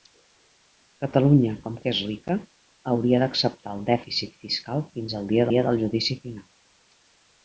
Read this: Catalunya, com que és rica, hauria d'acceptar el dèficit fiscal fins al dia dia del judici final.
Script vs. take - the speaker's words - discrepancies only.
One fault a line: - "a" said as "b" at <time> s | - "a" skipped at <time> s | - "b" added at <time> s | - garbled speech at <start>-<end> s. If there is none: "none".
none